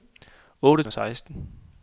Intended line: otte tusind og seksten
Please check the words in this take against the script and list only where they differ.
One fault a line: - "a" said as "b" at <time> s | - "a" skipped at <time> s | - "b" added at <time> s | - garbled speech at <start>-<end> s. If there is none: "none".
- "tusind" skipped at 0.8 s